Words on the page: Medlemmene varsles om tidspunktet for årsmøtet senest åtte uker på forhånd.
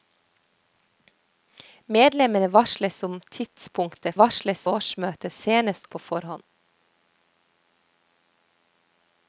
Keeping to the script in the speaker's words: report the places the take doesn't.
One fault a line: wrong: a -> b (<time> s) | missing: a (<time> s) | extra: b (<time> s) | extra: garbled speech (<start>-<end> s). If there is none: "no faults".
wrong: for -> varsles (4.2 s)
missing: åtte uker (5.9 s)